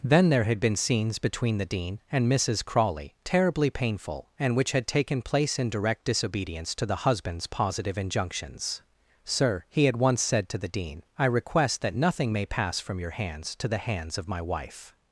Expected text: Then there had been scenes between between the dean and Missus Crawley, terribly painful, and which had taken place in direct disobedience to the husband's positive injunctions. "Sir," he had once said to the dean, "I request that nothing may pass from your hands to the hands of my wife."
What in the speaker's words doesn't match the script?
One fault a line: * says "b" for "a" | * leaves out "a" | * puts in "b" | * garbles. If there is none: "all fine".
* leaves out "between"